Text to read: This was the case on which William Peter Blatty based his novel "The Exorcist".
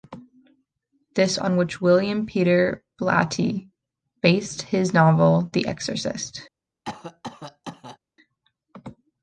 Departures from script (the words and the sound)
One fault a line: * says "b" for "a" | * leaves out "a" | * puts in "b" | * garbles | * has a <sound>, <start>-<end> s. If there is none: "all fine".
* leaves out "was the case"
* has a cough, 6.9-8.0 s